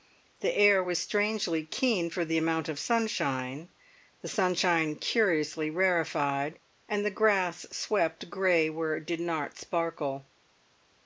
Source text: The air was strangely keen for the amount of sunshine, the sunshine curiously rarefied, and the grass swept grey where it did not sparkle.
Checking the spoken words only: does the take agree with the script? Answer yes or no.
yes